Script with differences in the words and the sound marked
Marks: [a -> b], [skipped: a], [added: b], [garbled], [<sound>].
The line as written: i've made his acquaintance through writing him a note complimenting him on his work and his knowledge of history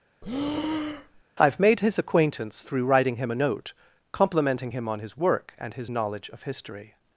[breath] i've made his acquaintance through writing him a note complimenting him on his work and his knowledge of history